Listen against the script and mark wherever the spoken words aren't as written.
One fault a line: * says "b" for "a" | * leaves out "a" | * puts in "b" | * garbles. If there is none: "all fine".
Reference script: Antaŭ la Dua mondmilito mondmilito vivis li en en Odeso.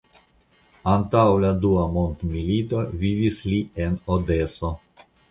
* leaves out "mondmilito"
* leaves out "en"